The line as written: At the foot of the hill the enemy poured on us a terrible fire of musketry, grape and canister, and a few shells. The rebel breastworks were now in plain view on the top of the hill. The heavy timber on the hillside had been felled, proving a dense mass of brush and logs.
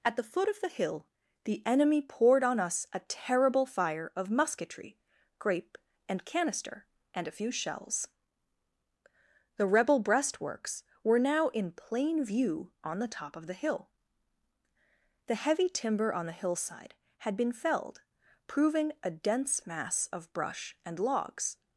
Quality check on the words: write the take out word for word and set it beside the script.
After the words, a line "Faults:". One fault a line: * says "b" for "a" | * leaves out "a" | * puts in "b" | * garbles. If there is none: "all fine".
At the foot of the hill the enemy poured on us a terrible fire of musketry, grape and canister, and a few shells. The rebel breastworks were now in plain view on the top of the hill. The heavy timber on the hillside had been felled, proving a dense mass of brush and logs.
Faults:
all fine